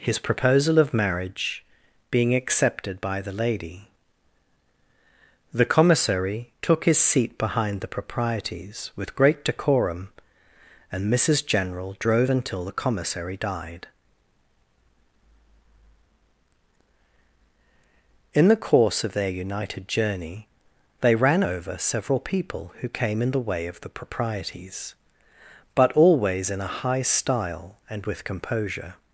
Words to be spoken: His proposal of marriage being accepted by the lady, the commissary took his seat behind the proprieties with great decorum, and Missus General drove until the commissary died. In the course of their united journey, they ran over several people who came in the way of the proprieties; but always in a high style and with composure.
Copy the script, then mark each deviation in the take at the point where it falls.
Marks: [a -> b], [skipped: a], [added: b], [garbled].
His proposal of marriage being accepted by the lady, the commissary took his seat behind the proprieties with great decorum, and Missus General drove until the commissary died. In the course of their united journey, they ran over several people who came in the way of the proprieties; but always in a high style and with composure.